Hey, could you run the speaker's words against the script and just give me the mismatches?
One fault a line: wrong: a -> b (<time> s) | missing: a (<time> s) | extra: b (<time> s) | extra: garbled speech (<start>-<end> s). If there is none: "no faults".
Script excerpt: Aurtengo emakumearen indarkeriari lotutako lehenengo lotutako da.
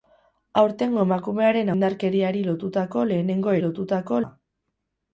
no faults